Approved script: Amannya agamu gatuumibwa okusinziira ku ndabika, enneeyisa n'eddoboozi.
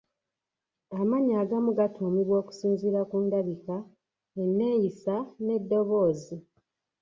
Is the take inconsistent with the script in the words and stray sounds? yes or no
no